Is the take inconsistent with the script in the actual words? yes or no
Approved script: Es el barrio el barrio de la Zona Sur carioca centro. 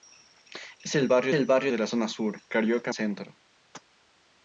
no